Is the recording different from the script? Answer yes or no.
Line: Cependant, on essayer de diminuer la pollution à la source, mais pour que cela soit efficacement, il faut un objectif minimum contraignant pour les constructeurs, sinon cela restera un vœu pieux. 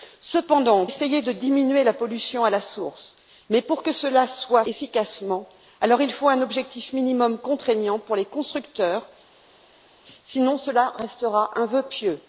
no